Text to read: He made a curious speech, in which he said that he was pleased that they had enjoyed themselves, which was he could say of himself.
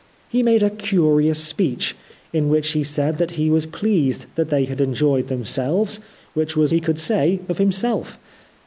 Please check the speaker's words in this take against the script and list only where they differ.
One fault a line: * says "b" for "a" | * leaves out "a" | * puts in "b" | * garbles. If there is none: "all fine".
all fine